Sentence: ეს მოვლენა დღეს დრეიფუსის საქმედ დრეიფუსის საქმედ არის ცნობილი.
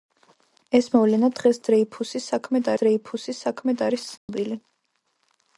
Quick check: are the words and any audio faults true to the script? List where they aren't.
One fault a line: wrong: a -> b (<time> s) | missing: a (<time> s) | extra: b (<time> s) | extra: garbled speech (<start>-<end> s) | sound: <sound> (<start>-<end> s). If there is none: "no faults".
sound: dropout (4.2-4.3 s)